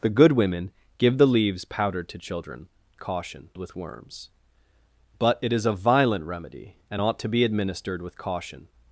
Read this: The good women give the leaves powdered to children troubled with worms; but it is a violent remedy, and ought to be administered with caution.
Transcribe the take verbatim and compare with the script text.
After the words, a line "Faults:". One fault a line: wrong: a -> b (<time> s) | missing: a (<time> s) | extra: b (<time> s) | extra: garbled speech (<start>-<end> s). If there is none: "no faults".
The good women give the leaves powdered to children caution with worms; but it is a violent remedy, and ought to be administered with caution.
Faults:
wrong: troubled -> caution (3.0 s)